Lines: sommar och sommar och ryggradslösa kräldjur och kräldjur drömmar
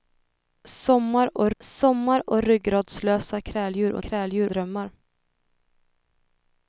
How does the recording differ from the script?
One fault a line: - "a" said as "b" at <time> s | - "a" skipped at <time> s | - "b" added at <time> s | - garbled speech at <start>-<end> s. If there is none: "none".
none